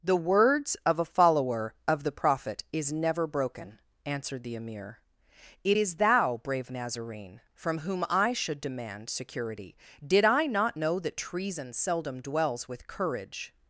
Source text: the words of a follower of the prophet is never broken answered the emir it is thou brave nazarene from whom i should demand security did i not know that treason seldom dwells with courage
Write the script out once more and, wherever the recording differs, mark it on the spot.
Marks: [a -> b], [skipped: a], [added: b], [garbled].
the words of a follower of the prophet is never broken answered the emir it is thou brave nazarene from whom i should demand security did i not know that treason seldom dwells with courage